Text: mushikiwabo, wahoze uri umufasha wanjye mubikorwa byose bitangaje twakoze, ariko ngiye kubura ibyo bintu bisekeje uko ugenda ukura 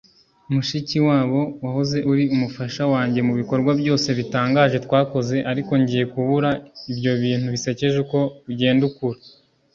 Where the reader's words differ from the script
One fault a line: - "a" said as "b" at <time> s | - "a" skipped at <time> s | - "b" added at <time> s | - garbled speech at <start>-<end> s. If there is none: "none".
none